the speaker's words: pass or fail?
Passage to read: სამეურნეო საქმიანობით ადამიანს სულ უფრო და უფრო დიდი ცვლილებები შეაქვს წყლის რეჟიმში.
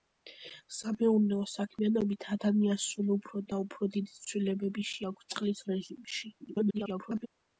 fail